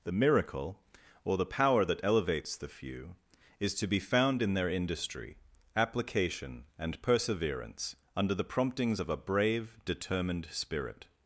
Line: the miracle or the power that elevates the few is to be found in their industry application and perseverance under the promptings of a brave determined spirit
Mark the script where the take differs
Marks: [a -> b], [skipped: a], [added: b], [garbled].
the miracle or the power that elevates the few is to be found in their industry application and perseverance under the promptings of a brave determined spirit